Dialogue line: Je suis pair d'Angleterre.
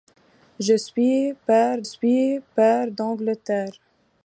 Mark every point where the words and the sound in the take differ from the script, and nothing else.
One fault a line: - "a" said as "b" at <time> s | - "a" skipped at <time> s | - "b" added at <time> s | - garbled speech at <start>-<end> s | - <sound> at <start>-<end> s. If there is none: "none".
- "suis pair" added at 1.8 s